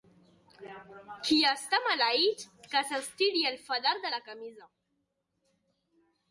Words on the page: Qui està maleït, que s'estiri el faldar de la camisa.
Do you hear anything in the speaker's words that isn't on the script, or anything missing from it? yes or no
no